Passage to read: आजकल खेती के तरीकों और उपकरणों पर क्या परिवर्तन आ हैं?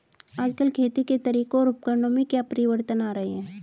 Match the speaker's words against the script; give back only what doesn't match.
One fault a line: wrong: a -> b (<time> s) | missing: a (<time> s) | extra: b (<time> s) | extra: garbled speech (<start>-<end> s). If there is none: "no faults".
wrong: पर -> में (2.1 s)
extra: रहें (3.1 s)